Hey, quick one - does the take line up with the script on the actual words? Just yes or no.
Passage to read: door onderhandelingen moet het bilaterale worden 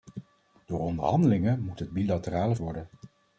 yes